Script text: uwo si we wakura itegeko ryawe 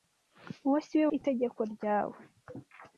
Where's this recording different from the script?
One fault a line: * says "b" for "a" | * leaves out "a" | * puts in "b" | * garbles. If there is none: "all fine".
* leaves out "wakura"